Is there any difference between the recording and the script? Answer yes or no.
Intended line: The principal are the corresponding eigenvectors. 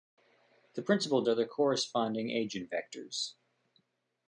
no